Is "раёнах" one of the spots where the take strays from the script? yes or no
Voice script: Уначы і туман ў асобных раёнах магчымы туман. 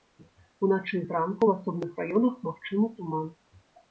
no